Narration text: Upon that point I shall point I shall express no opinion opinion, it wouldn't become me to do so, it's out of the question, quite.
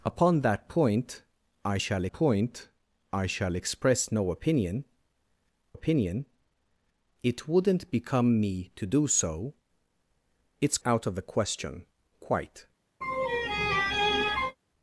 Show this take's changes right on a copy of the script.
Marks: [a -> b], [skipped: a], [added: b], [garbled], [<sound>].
Upon that point I shall point I shall express no opinion opinion, it wouldn't become me to do so, it's out of the question, quite. [laugh]